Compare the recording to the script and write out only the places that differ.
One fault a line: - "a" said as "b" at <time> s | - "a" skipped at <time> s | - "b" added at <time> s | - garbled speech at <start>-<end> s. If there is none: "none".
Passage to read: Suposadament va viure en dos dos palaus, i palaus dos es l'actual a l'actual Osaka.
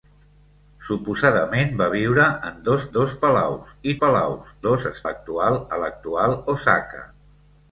none